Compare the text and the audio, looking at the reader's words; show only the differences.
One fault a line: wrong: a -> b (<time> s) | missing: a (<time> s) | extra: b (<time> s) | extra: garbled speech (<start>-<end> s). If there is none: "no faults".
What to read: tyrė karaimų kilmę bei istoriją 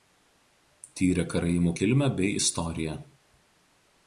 no faults